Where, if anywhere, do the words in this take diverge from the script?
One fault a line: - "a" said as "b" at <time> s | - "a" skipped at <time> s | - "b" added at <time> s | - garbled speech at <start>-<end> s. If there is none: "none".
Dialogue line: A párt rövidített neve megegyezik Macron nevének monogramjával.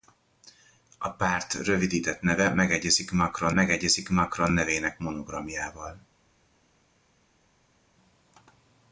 - "megegyezik Macron" added at 3.5 s